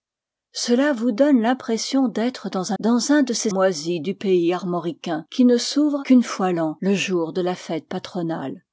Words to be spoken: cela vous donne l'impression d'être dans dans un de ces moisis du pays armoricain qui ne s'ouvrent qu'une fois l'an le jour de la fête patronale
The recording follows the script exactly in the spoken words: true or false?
true